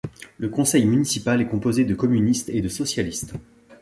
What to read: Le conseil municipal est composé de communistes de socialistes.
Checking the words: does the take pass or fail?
fail